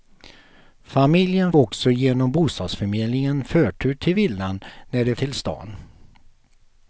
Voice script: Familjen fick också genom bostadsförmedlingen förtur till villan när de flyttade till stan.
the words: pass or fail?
fail